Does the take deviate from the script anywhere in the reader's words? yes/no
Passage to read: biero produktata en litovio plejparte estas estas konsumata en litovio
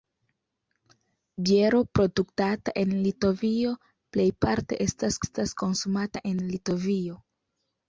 no